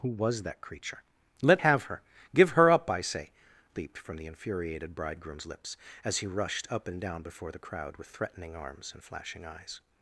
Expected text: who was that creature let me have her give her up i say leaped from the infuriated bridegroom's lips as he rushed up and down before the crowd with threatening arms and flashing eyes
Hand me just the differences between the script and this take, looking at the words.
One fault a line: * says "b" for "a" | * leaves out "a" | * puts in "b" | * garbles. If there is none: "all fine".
* leaves out "me"